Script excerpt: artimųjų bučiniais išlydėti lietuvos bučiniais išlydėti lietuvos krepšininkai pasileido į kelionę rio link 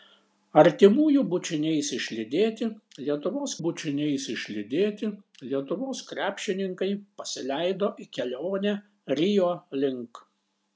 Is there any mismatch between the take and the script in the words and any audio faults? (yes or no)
no